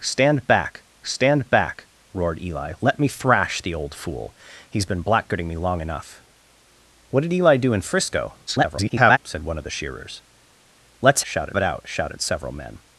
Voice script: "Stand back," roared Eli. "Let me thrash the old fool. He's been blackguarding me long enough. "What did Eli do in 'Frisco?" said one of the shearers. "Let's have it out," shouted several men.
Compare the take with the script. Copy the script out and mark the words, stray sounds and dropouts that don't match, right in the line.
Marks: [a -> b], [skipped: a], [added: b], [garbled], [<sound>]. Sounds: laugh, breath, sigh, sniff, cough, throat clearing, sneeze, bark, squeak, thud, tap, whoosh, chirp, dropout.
"Stand back," [added: stand back] roared Eli. "Let me thrash the old fool. He's been blackguarding me long enough. "What did Eli do in 'Frisco?" [garbled] said one of the shearers. "Let's [have -> shouted] it out," shouted several men.